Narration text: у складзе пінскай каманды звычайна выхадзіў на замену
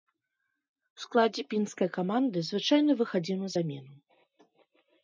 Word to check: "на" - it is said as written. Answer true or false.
true